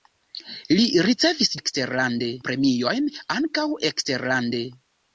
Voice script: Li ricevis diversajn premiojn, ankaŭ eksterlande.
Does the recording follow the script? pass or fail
fail